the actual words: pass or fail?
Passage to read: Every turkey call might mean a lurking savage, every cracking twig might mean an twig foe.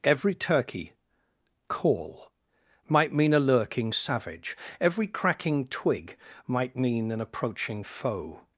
fail